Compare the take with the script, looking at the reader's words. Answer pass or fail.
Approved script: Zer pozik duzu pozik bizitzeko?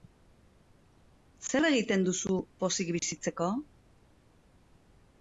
fail